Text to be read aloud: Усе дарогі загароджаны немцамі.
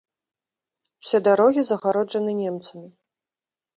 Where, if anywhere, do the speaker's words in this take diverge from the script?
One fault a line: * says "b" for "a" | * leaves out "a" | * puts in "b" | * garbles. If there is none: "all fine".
all fine